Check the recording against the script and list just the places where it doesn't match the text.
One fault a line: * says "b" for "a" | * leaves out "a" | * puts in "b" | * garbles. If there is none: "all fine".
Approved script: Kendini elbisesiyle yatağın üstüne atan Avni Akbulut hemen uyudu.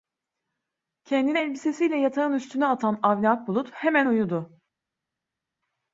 all fine